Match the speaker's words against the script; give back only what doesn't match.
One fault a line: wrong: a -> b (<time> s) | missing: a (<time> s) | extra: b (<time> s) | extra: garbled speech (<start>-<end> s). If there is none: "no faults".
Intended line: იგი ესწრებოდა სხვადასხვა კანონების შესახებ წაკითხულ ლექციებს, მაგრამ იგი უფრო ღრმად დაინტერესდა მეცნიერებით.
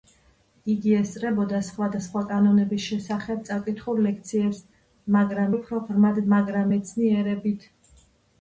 missing: იგი (5.5 s)
wrong: დაინტერესდა -> მაგრამ (6.3 s)